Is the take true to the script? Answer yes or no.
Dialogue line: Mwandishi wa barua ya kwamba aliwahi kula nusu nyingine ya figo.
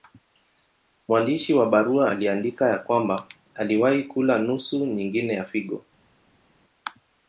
no